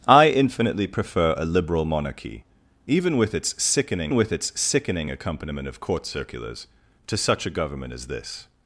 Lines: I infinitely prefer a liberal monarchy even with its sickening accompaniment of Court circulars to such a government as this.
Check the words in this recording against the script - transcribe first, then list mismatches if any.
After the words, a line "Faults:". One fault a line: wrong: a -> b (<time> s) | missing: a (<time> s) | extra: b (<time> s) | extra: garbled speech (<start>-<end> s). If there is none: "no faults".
I infinitely prefer a liberal monarchy even with its sickening with its sickening accompaniment of Court circulars to such a government as this.
Faults:
extra: with its sickening (4.1 s)